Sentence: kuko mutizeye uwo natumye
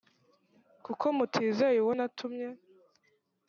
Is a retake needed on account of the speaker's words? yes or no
no